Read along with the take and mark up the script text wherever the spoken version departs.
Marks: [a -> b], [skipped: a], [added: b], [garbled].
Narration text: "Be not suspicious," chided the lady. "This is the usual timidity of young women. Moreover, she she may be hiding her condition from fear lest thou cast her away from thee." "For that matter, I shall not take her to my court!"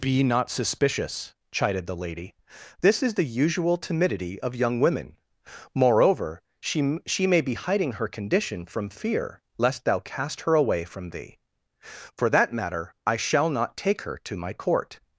"Be not suspicious," chided the lady. "This is the usual timidity of young women. Moreover, she she may be hiding her condition from fear lest thou cast her away from thee." "For that matter, I shall not take her to my court!"